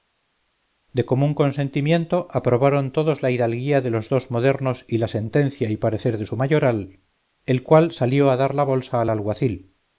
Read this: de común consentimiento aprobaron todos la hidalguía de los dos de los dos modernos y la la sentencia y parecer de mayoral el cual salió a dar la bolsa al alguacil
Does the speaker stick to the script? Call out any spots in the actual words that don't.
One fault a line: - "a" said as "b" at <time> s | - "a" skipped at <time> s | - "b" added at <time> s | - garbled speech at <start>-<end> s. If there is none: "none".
- "de los dos" skipped at 4.3 s
- "la" skipped at 5.1 s
- "su" added at 6.2 s